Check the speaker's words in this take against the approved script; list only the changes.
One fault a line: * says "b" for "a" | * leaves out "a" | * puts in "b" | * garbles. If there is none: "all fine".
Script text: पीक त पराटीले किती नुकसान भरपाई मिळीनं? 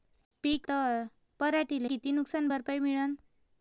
all fine